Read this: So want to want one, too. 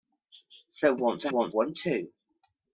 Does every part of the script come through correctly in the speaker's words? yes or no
yes